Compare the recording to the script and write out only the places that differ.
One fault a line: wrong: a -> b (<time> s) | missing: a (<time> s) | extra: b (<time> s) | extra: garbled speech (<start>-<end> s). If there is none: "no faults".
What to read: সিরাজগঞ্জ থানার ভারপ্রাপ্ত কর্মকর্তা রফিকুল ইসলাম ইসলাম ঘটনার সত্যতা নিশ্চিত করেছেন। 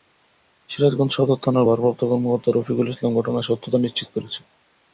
extra: সদর (1.1 s)
missing: ইসলাম (3.1 s)